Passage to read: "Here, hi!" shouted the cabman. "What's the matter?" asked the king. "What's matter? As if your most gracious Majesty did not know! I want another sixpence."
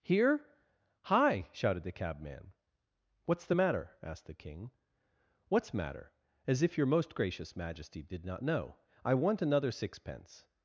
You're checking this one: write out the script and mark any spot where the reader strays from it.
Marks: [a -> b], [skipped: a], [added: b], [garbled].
"Here, hi!" shouted the cabman. "What's the matter?" asked the king. "What's matter? As if your most gracious Majesty did not know! I want another sixpence."